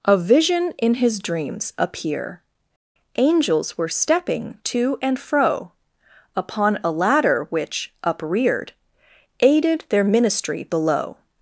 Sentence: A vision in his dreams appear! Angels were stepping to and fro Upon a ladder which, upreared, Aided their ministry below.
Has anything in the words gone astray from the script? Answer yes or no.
no